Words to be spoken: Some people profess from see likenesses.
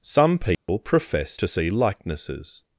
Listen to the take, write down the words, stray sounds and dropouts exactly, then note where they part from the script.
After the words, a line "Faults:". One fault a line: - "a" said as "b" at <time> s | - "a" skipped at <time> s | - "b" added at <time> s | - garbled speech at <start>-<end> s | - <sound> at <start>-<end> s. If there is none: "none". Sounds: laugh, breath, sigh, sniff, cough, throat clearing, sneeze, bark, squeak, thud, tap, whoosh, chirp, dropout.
Some people profess to see likenesses.
Faults:
- dropout at 0.5-0.7 s
- "from" said as "to" at 1.3 s